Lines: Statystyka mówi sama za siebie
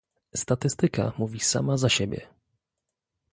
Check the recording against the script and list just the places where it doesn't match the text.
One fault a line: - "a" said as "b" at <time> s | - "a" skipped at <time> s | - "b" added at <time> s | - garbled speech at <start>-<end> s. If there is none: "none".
none